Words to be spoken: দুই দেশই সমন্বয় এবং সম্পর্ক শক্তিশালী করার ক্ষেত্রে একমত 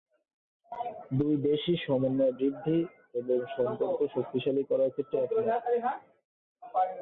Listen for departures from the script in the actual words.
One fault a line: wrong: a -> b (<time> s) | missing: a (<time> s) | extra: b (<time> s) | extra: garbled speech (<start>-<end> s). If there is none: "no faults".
extra: বৃদ্ধি (2.3 s)